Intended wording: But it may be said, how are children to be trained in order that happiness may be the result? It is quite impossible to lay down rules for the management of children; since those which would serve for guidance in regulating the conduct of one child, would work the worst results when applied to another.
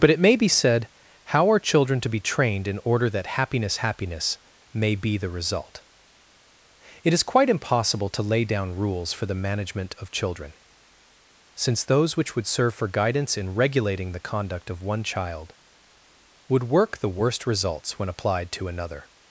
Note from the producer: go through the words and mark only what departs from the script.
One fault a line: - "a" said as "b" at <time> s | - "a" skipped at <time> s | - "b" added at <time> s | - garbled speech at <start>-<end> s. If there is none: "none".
- "happiness" added at 3.8 s